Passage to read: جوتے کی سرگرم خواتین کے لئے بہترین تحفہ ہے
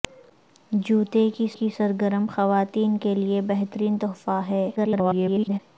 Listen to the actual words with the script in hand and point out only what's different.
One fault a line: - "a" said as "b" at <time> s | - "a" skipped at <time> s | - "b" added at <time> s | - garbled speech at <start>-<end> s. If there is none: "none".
- "کی" added at 1.5 s
- garbled speech at 4.8-5.6 s